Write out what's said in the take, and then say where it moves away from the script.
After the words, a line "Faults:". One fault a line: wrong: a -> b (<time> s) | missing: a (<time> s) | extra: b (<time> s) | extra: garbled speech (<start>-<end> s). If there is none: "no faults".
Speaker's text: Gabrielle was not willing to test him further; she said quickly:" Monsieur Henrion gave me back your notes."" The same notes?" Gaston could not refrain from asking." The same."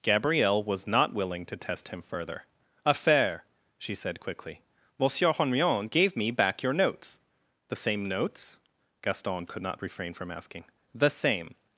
Gabrielle was not willing to test him further; affair she said quickly:" Monsieur Henrion gave me back your notes."" The same notes?" Gaston could not refrain from asking." The same."
Faults:
extra: affair (2.9 s)